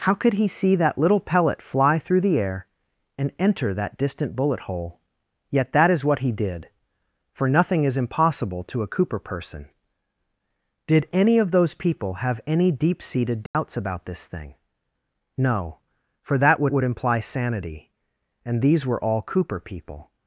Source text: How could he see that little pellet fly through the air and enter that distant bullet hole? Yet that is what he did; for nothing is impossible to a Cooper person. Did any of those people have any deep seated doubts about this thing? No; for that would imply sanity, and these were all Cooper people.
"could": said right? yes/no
yes